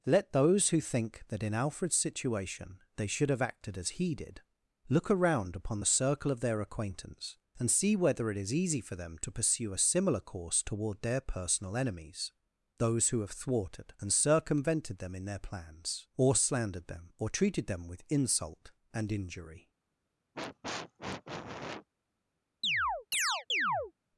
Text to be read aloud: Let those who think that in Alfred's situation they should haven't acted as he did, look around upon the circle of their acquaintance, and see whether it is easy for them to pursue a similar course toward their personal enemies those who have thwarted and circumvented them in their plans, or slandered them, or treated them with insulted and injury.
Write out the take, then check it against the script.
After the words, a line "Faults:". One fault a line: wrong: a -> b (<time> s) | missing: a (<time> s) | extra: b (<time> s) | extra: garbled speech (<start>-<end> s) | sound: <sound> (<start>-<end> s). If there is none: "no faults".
Let those who think that in Alfred's situation they should have acted as he did, look around upon the circle of their acquaintance, and see whether it is easy for them to pursue a similar course toward their personal enemies those who have thwarted and circumvented them in their plans, or slandered them, or treated them with insult and injury.
Faults:
wrong: haven't -> have (3.3 s)
wrong: insulted -> insult (18.1 s)
sound: sniff (20.3-21.9 s)
sound: chirp (22.6-23.9 s)